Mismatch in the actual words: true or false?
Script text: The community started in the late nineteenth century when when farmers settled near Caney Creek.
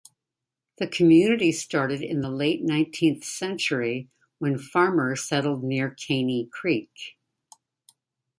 true